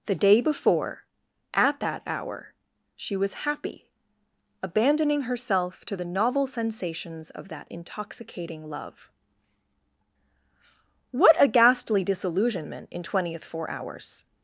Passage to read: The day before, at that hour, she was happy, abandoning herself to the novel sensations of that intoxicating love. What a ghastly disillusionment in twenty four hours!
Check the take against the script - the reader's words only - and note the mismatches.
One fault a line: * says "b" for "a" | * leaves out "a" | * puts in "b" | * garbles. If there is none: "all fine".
* says "twentieth" for "twenty"